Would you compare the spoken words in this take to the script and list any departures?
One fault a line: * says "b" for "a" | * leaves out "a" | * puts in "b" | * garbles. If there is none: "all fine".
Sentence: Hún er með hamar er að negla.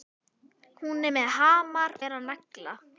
all fine